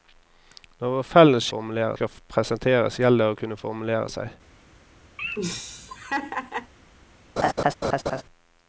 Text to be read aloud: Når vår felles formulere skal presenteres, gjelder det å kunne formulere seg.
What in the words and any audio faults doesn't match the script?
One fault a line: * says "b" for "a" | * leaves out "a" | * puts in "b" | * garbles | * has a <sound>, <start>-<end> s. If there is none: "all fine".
* has a laugh, 5.2-6.7 s
* has a laugh, 7.4-8.2 s